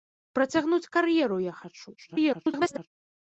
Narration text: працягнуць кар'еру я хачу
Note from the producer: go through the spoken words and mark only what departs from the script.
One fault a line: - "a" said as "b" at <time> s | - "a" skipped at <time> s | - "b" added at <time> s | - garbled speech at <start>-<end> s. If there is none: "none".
- garbled speech at 2.0-2.9 s